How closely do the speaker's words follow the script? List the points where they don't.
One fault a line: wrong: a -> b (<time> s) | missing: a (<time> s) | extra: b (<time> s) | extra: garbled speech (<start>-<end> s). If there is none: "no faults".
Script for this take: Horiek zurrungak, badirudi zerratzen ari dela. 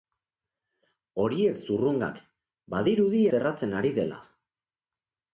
no faults